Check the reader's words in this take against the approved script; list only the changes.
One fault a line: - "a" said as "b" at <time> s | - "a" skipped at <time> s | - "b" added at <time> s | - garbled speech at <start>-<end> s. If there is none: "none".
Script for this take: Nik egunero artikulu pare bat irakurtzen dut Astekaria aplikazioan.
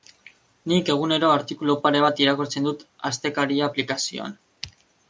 none